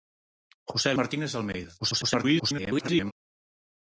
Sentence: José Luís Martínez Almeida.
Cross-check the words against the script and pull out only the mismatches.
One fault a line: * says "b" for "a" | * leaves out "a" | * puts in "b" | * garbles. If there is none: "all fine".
* leaves out "Luís"
* garbles